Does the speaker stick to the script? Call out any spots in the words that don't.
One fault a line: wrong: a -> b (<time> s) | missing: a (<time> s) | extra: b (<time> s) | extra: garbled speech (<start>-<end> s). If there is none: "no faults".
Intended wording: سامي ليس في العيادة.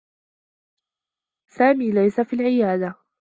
no faults